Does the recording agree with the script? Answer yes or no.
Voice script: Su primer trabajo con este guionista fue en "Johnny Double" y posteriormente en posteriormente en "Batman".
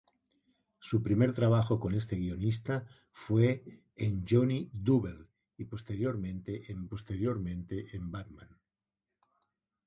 yes